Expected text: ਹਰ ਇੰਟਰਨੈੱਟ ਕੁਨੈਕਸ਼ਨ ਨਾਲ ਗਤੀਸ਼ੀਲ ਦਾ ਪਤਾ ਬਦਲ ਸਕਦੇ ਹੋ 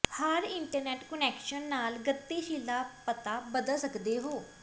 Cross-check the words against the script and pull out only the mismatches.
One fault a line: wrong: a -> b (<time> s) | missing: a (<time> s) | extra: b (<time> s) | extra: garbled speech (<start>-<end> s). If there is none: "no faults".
no faults